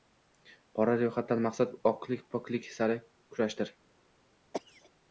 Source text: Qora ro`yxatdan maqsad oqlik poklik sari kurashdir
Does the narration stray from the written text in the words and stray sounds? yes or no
yes